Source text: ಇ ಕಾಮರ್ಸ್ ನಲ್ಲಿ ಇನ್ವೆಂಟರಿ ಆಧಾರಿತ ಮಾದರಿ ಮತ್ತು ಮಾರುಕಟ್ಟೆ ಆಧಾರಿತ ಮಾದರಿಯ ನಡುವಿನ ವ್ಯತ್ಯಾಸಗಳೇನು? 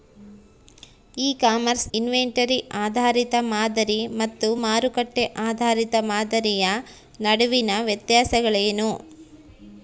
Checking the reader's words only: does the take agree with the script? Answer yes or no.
no